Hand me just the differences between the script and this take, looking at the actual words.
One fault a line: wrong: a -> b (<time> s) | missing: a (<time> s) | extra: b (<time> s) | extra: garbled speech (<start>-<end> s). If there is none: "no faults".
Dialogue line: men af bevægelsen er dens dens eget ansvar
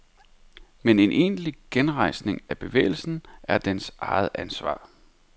extra: en egentlig genrejsning (1.0 s)
missing: dens (3.9 s)